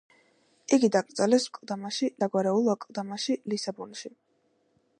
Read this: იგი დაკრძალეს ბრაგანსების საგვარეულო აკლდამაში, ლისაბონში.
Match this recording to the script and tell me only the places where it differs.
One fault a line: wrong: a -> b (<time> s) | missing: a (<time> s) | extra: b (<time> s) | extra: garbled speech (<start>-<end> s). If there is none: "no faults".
wrong: ბრაგანსების -> აკლდამაში (1.5 s)